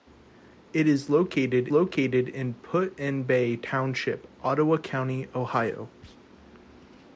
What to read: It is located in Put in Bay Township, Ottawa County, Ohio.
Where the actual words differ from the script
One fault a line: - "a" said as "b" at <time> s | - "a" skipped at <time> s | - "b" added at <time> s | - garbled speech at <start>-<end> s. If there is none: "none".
- "located" added at 1.7 s